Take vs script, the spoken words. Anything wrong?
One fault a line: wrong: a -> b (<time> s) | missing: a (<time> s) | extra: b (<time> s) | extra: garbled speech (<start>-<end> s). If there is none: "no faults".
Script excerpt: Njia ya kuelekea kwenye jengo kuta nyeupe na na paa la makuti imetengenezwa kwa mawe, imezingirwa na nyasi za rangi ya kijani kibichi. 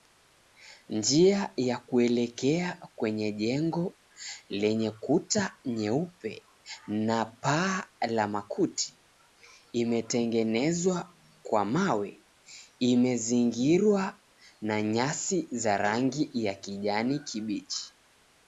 extra: lenye (4.5 s)
missing: na (7.2 s)